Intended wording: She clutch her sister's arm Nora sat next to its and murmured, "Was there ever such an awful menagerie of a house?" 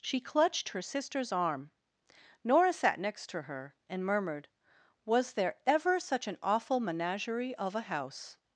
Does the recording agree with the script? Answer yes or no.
no